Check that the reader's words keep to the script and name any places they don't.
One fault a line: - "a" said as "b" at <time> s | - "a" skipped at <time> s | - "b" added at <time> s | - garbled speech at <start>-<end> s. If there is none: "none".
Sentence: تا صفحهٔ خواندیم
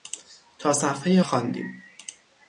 none